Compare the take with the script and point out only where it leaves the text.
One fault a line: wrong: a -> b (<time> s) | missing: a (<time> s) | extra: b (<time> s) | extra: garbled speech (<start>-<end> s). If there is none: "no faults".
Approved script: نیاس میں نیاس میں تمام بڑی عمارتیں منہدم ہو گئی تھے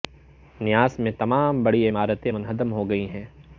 missing: نیاس میں (1.1 s)
wrong: تھے -> ہیں (3.1 s)